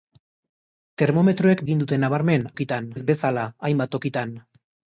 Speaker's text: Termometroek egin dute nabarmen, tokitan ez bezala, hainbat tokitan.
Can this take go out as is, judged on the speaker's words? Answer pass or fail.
pass